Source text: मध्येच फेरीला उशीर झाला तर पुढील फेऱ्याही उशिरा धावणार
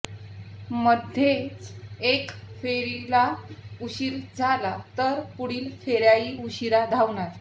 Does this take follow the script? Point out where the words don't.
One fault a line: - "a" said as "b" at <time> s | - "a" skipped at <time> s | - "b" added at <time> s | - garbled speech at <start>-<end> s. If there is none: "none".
- "एका" added at 2.0 s